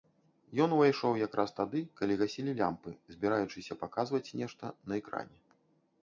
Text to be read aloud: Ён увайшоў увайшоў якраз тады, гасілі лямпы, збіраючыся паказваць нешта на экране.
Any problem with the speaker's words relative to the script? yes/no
yes